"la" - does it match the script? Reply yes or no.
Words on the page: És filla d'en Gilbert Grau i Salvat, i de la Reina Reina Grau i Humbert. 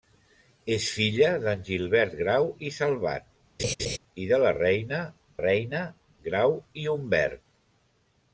yes